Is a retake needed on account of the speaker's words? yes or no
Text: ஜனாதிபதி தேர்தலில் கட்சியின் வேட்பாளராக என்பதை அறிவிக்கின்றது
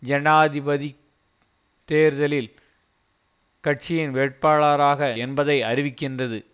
no